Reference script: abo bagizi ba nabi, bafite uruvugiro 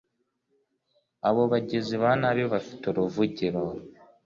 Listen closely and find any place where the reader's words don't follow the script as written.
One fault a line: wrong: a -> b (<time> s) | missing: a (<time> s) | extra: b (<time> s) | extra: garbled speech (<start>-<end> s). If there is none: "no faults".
no faults